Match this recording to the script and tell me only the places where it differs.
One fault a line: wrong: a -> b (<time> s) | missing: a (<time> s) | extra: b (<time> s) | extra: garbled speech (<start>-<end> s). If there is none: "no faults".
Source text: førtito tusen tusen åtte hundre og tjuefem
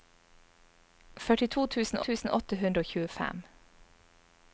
no faults